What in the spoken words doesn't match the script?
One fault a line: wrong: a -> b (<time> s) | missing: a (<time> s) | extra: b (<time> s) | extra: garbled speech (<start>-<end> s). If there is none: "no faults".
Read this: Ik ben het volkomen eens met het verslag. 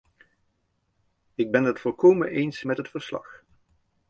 no faults